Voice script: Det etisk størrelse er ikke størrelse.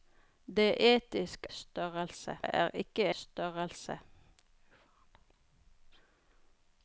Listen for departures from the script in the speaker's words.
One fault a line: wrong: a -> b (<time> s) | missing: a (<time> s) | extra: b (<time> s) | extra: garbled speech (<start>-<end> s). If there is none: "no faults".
no faults